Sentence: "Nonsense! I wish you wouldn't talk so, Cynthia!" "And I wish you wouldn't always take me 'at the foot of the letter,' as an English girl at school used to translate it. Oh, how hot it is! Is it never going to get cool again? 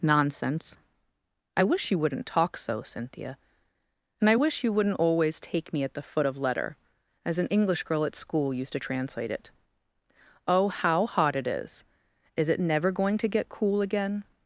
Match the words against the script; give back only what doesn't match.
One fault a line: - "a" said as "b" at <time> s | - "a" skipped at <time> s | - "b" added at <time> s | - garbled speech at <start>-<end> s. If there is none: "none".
- "the" skipped at 6.4 s